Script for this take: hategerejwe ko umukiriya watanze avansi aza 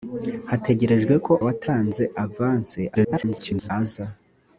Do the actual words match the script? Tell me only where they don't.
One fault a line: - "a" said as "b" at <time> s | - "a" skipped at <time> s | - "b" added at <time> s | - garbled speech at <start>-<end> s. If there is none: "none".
- "umukiriya" skipped at 1.3 s
- garbled speech at 2.9-3.7 s